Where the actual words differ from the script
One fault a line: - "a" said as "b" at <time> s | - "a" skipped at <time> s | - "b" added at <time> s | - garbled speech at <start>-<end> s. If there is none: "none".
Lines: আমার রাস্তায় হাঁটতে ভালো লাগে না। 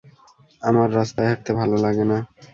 none